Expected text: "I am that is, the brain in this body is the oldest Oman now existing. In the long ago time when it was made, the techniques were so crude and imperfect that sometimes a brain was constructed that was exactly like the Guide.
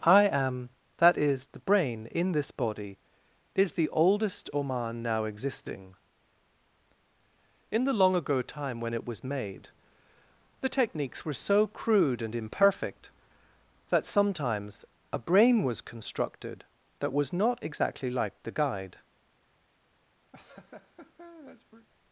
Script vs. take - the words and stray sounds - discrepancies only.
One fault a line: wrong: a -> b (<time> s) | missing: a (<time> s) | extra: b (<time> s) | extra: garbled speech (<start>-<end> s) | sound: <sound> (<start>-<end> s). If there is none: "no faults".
extra: not (17.3 s)
sound: laugh (20.3-21.9 s)